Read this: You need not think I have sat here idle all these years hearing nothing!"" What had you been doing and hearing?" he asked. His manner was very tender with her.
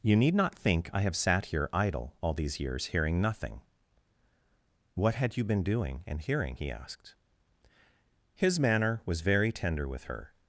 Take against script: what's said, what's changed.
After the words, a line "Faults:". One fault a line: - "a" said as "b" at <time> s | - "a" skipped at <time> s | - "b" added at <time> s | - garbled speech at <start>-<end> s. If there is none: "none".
You need not think I have sat here idle all these years hearing nothing!"" What had you been doing and hearing?" he asked. His manner was very tender with her.
Faults:
none